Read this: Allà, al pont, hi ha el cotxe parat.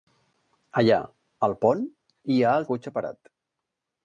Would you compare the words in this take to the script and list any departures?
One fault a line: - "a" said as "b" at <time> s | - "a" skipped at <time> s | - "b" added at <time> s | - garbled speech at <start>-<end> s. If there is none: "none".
none